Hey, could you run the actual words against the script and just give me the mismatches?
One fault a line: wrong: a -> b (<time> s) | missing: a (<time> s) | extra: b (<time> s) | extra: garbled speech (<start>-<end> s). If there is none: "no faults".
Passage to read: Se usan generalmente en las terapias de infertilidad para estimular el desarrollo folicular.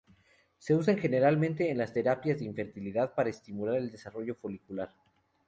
no faults